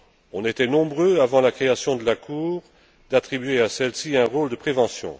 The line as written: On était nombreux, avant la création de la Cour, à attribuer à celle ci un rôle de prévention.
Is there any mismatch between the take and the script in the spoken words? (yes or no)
no